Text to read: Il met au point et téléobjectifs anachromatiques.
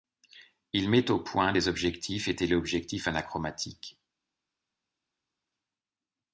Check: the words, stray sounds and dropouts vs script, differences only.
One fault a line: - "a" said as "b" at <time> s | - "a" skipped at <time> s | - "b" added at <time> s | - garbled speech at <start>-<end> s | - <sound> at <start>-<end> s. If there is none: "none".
- "des objectifs" added at 1.5 s